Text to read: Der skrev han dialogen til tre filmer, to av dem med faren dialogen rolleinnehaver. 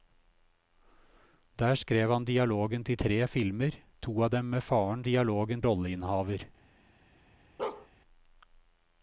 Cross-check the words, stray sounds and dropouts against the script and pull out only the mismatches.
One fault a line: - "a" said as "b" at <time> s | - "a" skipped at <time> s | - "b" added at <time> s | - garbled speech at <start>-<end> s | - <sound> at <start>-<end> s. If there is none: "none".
- bark at 7.6-7.9 s